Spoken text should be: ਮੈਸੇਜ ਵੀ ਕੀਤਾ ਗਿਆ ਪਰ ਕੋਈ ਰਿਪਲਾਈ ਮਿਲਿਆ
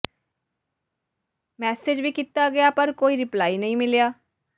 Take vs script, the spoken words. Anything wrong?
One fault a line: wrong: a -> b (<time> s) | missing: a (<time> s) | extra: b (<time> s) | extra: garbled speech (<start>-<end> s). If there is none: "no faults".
extra: ਨਹੀਂ (3.6 s)